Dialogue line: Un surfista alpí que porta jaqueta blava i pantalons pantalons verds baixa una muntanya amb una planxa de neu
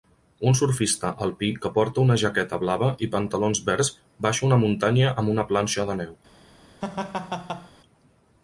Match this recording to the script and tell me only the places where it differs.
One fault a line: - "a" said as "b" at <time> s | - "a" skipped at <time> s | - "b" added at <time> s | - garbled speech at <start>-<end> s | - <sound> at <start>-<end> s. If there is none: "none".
- "una" added at 2.0 s
- "pantalons" skipped at 3.6 s
- laugh at 6.8-7.7 s